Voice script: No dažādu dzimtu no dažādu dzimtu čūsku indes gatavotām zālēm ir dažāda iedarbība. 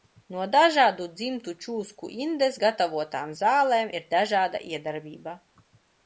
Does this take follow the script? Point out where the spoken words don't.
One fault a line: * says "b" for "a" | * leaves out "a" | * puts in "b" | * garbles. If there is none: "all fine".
* leaves out "no dažādu dzimtu"